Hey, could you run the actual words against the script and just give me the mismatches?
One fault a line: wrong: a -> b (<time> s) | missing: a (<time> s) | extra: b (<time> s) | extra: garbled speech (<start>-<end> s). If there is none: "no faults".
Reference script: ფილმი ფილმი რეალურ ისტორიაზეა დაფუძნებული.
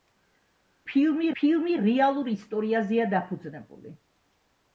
no faults